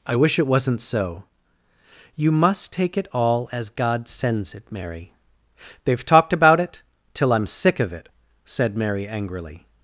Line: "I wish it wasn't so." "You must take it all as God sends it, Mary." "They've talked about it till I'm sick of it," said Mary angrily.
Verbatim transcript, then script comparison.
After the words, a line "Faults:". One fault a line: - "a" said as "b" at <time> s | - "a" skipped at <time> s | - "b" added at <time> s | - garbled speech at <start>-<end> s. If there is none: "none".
"I wish it wasn't so." "You must take it all as God sends it, Mary." "They've talked about it till I'm sick of it," said Mary angrily.
Faults:
none